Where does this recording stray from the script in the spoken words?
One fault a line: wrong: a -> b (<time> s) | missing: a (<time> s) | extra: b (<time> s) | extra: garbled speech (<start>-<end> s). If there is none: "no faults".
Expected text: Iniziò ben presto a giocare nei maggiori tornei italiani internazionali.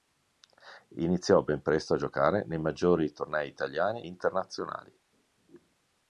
no faults